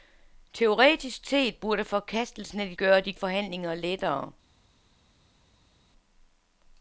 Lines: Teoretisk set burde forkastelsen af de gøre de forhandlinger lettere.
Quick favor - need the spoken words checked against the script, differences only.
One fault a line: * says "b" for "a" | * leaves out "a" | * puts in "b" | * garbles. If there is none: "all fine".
all fine